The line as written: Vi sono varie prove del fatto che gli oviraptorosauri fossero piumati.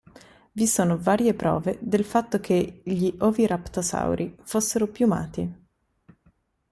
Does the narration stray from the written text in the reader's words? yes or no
no